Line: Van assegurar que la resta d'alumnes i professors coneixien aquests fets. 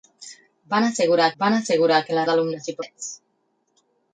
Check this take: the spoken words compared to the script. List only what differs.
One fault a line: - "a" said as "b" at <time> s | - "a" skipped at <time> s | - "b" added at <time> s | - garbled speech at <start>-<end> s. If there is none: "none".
- "van assegurar" added at 1.4 s
- "resta" skipped at 2.2 s
- "professors coneixien aquests" skipped at 2.8 s